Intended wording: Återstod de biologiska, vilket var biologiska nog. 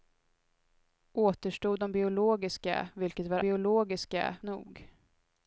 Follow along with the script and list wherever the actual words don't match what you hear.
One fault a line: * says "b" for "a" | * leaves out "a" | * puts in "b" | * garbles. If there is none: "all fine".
all fine